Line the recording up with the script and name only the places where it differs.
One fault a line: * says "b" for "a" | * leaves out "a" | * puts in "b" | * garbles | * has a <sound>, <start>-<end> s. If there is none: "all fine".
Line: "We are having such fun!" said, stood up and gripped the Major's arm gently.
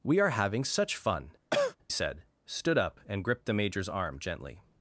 * has a cough, 1.5-1.8 s